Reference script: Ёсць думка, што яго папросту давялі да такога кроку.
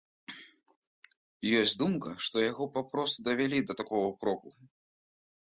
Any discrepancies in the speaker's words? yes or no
no